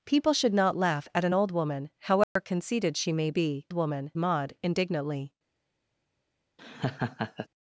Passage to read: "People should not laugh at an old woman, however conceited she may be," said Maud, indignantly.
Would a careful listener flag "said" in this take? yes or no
yes